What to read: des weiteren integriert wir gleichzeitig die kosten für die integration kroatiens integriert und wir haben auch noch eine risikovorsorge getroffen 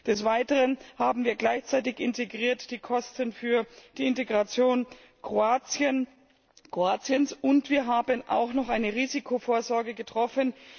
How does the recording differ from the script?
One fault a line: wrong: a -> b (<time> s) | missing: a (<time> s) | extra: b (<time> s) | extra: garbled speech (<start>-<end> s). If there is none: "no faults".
wrong: integriert -> haben (1.0 s)